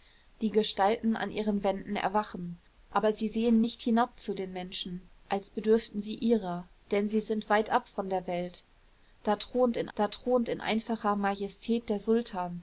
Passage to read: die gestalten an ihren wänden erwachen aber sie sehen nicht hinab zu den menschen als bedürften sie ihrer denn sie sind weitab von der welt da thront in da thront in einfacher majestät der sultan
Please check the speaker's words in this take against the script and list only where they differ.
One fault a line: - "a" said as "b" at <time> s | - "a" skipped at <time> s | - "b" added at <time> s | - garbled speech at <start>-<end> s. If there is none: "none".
none